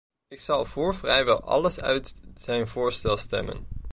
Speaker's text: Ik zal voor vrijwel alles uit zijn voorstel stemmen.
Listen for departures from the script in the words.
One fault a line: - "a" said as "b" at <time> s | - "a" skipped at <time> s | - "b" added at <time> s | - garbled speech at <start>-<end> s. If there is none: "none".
none